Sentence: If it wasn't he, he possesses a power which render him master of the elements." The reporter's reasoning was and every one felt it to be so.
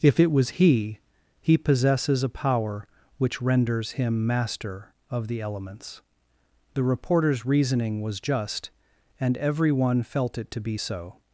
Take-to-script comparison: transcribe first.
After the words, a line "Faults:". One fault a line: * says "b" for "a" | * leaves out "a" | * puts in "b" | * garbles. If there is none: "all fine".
If it was he, he possesses a power which renders him master of the elements." The reporter's reasoning was just, and every one felt it to be so.
Faults:
* says "was" for "wasn't"
* says "renders" for "render"
* puts in "just"